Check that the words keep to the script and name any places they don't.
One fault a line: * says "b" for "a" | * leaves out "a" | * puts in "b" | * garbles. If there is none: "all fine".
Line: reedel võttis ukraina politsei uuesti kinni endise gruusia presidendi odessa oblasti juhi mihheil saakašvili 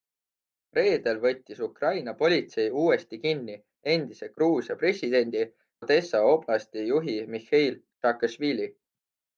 all fine